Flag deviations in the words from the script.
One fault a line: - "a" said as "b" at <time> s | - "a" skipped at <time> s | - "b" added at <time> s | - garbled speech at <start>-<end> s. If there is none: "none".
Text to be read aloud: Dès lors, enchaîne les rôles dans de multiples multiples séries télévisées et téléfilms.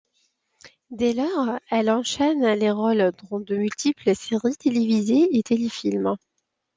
- "elle" added at 1.7 s
- "multiples" skipped at 4.1 s